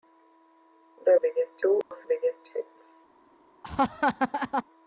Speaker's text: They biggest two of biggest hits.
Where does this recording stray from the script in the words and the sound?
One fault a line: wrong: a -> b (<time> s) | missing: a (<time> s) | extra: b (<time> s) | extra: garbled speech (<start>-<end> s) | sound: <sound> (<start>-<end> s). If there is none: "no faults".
sound: dropout (1.8-1.9 s)
sound: laugh (3.6-4.6 s)